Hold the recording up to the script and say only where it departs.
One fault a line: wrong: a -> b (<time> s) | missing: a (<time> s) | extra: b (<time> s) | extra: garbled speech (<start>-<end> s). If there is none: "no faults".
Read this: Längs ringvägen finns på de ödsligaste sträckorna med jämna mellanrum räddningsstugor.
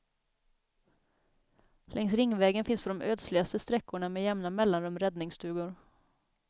no faults